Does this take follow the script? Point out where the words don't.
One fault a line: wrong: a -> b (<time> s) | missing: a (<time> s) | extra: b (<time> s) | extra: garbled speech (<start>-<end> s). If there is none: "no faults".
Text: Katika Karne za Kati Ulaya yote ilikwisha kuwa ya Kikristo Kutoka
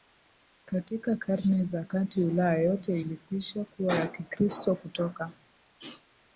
no faults